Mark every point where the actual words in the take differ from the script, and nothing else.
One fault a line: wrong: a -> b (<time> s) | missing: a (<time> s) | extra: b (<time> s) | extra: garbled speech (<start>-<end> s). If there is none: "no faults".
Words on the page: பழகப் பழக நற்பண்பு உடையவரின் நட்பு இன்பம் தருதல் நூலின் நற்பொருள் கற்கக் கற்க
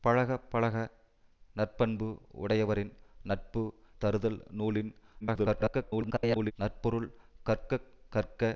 missing: இன்பம் (3.6 s)
extra: garbled speech (5.2-6.5 s)